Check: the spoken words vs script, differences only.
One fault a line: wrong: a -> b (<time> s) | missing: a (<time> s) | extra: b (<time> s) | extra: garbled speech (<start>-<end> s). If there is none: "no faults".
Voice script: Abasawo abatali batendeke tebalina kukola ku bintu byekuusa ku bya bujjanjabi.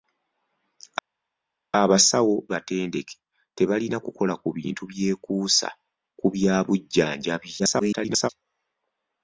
missing: abatali (2.4 s)
extra: garbled speech (7.6-8.3 s)